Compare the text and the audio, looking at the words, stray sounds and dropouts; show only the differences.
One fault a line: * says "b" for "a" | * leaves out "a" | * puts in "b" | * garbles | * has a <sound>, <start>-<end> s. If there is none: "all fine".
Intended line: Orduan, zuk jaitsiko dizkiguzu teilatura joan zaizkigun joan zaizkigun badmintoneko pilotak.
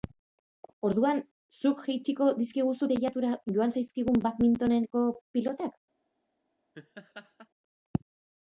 * leaves out "joan zaizkigun"
* has a laugh, 6.7-7.5 s